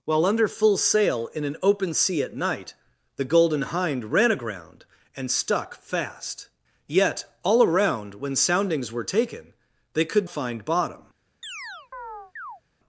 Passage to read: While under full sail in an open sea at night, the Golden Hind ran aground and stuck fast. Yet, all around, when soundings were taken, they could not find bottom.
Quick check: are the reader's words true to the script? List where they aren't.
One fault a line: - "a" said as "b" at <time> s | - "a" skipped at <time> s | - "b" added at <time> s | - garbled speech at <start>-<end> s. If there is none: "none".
- "not" skipped at 10.3 s